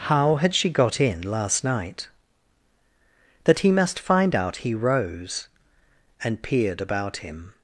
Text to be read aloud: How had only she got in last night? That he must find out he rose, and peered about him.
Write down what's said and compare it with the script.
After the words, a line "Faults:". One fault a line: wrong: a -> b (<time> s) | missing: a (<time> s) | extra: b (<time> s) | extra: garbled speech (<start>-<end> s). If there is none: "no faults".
How had she got in last night? That he must find out he rose, and peered about him.
Faults:
missing: only (0.6 s)